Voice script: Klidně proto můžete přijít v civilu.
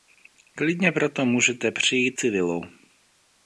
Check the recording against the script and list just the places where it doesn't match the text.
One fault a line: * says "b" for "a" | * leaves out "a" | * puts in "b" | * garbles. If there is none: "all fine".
* leaves out "v"